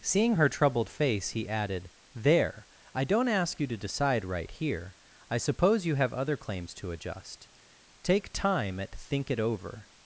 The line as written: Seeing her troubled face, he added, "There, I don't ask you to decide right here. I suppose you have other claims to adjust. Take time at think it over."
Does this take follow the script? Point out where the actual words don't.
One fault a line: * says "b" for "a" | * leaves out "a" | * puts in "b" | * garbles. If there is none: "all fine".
all fine